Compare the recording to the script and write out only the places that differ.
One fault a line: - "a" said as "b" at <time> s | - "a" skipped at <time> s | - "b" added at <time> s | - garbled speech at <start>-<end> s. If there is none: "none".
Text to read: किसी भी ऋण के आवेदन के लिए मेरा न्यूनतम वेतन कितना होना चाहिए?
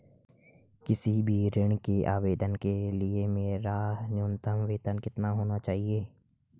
none